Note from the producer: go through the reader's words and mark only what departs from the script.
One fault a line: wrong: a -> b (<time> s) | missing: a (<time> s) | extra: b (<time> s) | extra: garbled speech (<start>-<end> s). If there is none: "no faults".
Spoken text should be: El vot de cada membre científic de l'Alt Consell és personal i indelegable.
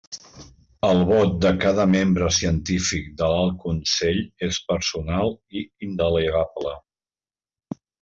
no faults